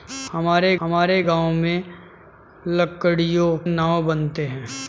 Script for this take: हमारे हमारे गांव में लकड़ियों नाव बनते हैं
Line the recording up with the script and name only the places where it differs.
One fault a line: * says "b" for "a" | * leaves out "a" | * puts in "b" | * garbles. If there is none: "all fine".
all fine